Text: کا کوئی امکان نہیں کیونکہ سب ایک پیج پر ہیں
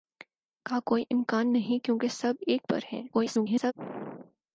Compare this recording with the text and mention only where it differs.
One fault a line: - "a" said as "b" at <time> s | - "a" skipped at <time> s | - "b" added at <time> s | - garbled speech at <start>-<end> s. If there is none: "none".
- "پیج" skipped at 2.6 s
- garbled speech at 3.1-3.7 s